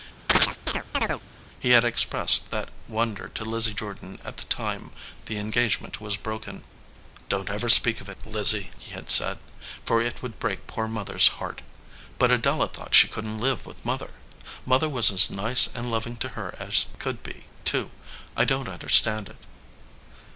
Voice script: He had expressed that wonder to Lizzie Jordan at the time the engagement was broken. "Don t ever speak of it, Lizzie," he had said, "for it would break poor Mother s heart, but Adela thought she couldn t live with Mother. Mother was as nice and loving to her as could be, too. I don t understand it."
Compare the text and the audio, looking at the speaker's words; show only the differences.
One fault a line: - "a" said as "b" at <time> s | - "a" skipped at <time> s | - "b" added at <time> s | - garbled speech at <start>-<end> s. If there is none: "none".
none